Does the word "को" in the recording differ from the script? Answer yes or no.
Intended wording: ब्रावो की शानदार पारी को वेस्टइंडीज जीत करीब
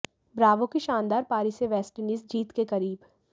yes